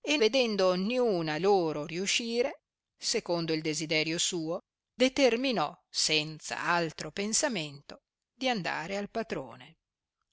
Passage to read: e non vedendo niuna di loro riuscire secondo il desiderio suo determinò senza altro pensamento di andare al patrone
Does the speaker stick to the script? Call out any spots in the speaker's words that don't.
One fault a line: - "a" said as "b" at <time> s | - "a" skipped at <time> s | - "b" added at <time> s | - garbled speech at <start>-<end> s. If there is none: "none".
- "non" skipped at 0.2 s
- "di" skipped at 1.4 s